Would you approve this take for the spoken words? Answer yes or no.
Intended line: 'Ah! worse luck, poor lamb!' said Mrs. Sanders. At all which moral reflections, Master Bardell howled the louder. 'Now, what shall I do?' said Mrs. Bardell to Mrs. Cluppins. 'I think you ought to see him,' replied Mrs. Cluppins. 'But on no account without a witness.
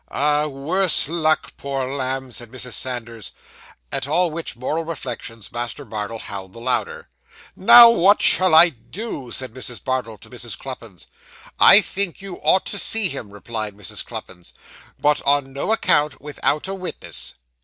yes